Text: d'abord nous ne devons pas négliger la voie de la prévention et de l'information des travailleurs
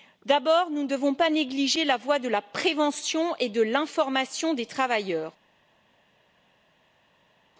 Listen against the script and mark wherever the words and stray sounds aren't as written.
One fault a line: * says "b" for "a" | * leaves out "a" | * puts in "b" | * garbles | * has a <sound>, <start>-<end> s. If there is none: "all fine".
all fine